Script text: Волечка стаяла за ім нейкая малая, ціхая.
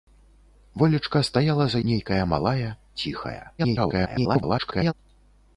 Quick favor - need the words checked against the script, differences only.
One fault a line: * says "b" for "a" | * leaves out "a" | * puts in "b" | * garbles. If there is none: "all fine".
* leaves out "ім"
* garbles